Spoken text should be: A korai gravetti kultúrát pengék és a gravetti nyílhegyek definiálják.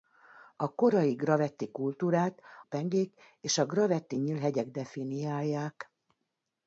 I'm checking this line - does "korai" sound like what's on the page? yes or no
yes